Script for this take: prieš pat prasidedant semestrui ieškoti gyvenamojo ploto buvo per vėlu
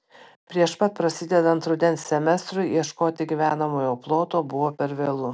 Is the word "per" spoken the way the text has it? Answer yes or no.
yes